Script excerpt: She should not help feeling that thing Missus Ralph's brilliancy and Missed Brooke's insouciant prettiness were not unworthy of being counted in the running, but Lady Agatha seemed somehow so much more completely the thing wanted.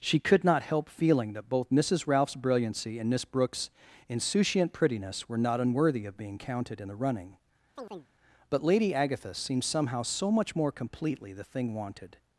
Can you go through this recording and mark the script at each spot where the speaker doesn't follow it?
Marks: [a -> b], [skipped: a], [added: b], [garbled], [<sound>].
She [should -> could] not help feeling that [thing -> both] Missus Ralph's brilliancy and [Missed -> Miss] Brooke's insouciant prettiness were not unworthy of being counted in the running, [chirp] but Lady Agatha seemed somehow so much more completely the thing wanted.